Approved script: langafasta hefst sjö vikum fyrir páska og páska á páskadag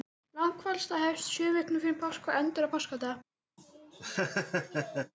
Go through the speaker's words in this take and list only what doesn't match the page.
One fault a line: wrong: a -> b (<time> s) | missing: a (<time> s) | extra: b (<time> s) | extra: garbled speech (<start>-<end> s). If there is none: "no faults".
wrong: páska -> endar (2.4 s)